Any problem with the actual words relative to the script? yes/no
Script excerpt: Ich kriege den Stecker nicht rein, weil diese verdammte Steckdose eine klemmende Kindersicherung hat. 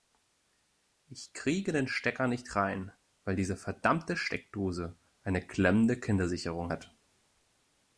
no